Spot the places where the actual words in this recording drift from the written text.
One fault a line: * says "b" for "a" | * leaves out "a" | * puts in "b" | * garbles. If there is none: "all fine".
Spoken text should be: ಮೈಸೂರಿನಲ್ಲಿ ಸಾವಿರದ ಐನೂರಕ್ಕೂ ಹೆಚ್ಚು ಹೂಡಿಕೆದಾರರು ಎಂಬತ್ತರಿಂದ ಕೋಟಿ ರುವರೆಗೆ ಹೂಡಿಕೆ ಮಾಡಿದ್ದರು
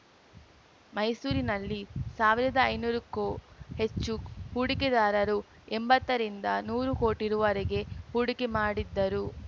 * puts in "ನೂರು"